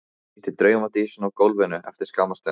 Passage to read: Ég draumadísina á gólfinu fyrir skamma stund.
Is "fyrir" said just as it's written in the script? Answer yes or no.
no